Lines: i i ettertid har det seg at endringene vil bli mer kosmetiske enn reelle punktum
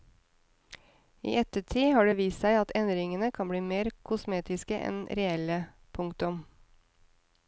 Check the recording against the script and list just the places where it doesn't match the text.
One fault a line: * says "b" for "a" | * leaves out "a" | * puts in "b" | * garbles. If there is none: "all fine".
* leaves out "i"
* puts in "vist"
* says "kan" for "vil"